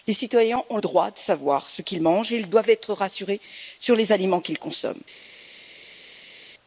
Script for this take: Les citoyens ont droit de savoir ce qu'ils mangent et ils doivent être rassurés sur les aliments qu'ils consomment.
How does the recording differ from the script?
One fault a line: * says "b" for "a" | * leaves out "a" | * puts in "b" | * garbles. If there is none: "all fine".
all fine